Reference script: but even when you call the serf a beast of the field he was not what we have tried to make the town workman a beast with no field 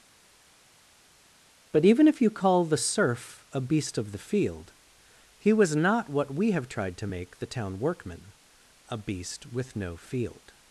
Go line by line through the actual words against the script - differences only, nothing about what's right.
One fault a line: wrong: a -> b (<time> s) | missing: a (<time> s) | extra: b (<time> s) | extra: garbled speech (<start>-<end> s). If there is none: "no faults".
wrong: when -> if (2.1 s)